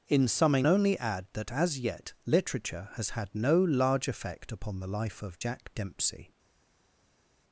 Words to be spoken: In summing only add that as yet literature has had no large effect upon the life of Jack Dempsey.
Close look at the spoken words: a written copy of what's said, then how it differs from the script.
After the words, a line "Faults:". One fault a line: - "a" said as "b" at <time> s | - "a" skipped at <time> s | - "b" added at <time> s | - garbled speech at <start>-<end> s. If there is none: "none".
In summing only add that as yet literature has had no large effect upon the life of Jack Dempsey.
Faults:
none